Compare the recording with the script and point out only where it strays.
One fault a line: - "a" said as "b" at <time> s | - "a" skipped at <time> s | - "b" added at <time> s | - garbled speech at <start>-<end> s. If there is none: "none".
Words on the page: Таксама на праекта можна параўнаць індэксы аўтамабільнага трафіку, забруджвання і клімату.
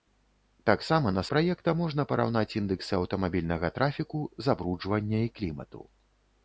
none